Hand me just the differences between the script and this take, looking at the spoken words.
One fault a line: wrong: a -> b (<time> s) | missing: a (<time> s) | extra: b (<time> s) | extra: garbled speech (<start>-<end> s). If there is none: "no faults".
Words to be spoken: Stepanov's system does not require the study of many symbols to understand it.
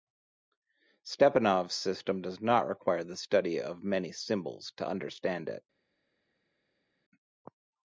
no faults